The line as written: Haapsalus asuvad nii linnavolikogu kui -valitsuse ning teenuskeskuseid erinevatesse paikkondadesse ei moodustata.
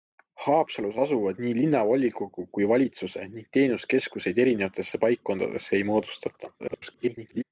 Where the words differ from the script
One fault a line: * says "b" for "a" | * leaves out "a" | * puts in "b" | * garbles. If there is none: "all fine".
* garbles